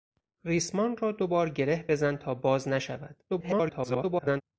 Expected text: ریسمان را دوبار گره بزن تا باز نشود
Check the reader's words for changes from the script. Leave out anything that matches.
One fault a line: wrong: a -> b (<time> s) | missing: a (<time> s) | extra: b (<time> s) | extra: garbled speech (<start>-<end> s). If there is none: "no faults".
extra: garbled speech (3.3-4.4 s)